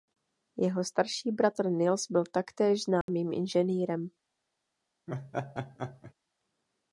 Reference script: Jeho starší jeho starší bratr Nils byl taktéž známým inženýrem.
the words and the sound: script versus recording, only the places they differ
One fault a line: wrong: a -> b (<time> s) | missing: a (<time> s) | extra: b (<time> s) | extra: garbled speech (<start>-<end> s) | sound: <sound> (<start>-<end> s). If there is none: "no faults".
missing: jeho starší (1.3 s)
sound: dropout (3.0-3.1 s)
sound: laugh (5.1-6.1 s)